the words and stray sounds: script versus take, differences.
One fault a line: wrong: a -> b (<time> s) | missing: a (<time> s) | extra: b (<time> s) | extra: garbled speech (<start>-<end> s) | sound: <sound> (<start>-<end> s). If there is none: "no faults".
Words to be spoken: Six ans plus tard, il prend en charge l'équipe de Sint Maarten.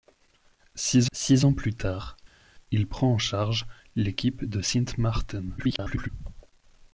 extra: six (1.1 s)
extra: garbled speech (5.6-6.1 s)